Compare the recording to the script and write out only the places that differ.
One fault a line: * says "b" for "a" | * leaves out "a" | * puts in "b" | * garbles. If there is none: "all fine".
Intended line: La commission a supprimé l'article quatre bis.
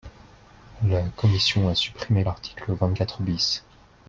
* puts in "vingt"